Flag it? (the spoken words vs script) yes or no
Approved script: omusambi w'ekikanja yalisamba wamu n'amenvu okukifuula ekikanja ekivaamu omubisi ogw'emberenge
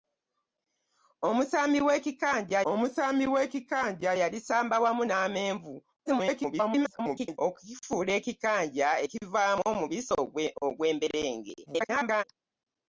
yes